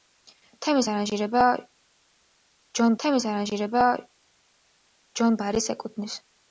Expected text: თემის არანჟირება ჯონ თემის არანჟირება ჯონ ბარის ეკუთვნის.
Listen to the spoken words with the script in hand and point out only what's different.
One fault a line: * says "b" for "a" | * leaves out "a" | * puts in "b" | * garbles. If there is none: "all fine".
all fine